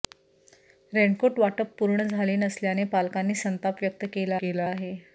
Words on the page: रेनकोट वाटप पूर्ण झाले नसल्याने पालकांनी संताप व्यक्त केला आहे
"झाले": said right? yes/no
yes